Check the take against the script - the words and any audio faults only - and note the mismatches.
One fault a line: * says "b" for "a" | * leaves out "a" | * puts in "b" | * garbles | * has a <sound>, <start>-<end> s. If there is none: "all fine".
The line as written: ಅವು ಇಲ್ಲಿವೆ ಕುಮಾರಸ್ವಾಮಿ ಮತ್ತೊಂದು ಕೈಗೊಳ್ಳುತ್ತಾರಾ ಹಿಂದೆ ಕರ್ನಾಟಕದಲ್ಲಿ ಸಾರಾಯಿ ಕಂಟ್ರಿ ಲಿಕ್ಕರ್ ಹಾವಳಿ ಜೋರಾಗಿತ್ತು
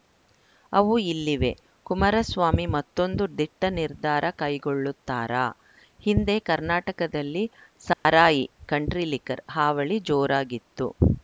* puts in "ದಿಟ್ಟನಿರ್ಧಾರ"
* has a dropout, 7.9-8.1 s